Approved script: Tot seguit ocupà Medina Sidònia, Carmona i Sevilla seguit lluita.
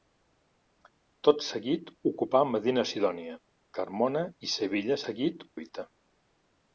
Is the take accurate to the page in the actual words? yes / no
yes